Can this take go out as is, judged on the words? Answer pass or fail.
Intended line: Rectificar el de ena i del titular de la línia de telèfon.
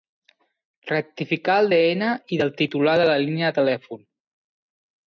pass